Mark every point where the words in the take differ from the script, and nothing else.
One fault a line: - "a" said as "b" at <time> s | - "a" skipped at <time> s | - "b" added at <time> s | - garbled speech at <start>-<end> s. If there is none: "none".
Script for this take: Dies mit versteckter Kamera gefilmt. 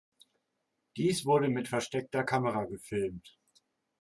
- "wurde" added at 1.3 s